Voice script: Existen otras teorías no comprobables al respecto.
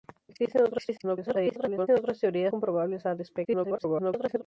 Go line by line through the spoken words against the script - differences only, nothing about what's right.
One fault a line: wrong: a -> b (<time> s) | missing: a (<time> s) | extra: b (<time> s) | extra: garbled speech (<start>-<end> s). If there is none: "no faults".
extra: garbled speech (1.0-1.9 s)
missing: no (2.5 s)
extra: garbled speech (3.4-4.4 s)